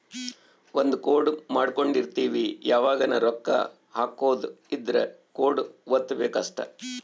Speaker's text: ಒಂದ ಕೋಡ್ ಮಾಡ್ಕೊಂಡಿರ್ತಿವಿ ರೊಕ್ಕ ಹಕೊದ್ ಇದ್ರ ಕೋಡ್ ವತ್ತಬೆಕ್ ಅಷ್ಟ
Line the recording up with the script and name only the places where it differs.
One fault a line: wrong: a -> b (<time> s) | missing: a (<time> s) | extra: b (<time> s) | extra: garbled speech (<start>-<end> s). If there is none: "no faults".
extra: ಯಾವಗನ (2.6 s)